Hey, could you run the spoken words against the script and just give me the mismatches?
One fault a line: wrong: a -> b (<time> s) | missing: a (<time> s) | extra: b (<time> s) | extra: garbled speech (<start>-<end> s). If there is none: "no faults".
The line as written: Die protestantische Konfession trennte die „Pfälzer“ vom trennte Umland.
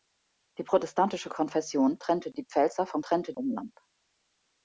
no faults